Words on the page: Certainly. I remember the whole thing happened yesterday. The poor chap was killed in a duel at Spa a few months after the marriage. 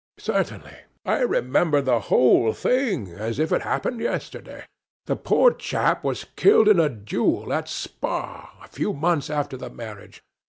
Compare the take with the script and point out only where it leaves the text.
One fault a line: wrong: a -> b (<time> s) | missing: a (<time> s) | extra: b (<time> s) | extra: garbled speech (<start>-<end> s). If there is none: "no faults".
extra: as if it (3.1 s)